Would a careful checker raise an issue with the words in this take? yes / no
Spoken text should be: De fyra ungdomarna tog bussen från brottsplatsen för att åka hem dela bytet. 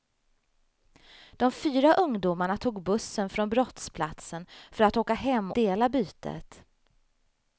no